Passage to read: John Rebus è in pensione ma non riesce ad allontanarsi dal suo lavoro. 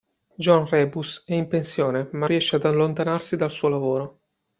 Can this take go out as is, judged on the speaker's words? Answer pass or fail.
fail